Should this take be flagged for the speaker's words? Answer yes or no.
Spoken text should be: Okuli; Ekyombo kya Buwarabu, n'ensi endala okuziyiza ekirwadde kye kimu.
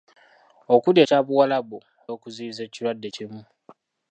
yes